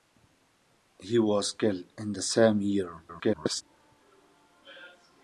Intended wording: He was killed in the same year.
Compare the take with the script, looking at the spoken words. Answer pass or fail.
fail